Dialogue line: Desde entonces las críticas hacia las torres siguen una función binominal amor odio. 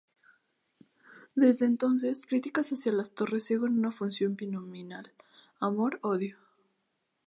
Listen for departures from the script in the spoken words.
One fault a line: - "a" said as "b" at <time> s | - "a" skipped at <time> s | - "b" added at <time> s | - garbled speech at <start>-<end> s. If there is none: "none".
- "las" skipped at 2.2 s